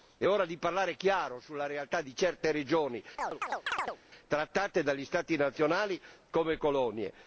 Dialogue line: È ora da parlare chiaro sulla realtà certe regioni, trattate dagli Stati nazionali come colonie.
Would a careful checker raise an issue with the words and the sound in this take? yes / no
yes